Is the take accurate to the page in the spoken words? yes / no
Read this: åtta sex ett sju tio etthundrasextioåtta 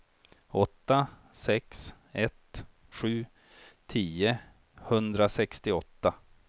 yes